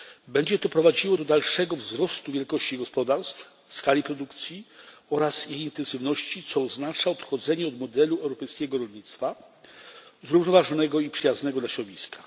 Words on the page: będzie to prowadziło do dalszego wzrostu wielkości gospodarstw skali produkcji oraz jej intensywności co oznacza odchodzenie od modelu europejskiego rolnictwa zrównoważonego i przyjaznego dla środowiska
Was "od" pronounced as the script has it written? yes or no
yes